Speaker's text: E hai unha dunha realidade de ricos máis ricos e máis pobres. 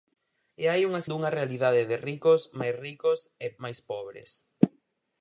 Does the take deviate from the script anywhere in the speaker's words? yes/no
no